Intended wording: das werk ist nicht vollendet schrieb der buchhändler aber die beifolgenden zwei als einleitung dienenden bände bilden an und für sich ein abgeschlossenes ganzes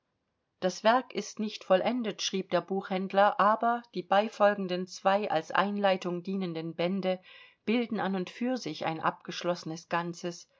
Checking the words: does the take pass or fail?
pass